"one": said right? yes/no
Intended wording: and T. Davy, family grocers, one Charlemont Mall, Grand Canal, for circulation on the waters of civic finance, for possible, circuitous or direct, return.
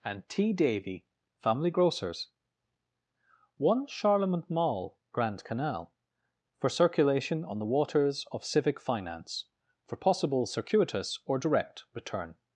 yes